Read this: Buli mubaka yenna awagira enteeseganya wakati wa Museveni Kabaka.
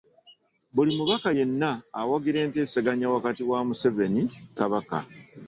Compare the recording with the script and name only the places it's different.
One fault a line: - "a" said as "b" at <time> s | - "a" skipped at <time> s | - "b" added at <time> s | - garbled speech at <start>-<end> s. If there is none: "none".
none